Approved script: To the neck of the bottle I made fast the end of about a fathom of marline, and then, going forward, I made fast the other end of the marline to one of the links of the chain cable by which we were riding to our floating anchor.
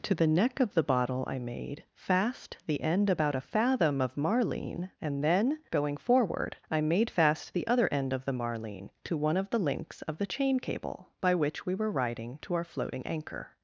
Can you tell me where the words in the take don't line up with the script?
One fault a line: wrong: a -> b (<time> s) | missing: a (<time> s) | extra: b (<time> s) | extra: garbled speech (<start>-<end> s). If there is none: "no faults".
missing: of (3.1 s)